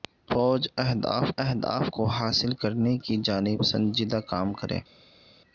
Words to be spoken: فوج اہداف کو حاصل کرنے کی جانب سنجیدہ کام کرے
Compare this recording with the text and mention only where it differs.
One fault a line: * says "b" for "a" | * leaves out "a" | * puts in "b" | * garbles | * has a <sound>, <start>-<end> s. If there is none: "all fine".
* puts in "اہداف"